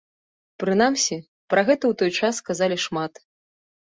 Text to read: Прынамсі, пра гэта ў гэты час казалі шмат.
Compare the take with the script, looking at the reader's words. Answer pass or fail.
fail